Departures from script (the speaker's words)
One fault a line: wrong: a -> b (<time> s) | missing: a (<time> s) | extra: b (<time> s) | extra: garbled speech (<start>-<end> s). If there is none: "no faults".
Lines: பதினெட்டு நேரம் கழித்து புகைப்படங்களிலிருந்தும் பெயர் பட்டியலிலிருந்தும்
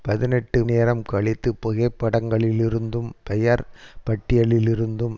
no faults